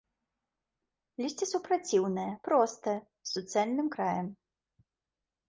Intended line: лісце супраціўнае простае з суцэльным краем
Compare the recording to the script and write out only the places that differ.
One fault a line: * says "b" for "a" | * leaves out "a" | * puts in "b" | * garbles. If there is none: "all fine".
all fine